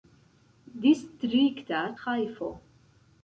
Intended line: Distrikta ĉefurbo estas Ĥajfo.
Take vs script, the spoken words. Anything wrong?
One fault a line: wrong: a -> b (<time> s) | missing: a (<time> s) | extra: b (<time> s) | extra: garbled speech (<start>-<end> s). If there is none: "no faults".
missing: ĉefurbo estas (1.8 s)